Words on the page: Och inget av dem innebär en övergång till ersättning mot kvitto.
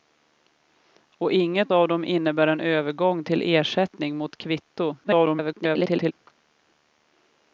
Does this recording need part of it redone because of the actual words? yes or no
yes